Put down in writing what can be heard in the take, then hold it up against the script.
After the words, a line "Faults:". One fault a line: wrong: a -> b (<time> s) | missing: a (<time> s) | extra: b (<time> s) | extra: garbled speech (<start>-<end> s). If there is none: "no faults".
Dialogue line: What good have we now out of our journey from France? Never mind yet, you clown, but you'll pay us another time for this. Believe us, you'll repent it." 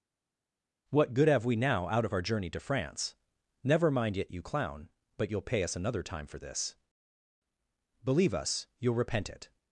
What good have we now out of our journey to France? Never mind yet, you clown, but you'll pay us another time for this. Believe us, you'll repent it."
Faults:
wrong: from -> to (2.5 s)